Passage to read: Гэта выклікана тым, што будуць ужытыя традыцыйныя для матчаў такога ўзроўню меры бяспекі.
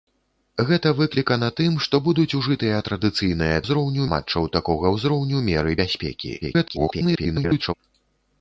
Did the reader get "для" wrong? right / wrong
wrong